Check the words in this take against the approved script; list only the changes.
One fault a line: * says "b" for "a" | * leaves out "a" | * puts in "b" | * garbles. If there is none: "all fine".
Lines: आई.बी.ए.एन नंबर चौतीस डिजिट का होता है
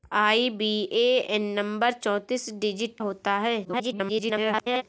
* leaves out "का"
* garbles